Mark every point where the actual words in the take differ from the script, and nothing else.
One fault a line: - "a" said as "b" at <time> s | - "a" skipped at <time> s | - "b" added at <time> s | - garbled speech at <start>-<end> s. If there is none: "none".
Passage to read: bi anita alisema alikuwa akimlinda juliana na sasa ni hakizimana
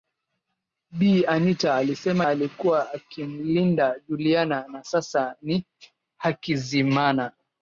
none